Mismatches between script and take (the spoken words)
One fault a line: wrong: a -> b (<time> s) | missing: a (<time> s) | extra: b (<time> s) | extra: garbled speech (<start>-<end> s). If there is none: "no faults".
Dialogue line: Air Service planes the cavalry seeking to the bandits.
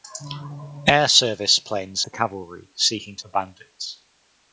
no faults